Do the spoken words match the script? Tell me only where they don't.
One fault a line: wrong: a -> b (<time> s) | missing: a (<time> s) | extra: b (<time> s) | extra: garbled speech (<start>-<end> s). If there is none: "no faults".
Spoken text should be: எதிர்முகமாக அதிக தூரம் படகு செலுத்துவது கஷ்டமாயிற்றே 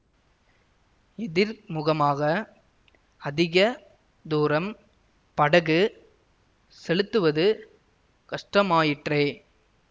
no faults